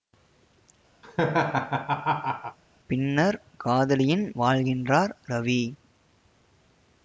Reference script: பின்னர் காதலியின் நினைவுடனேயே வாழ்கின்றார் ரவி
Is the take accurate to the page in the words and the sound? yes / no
no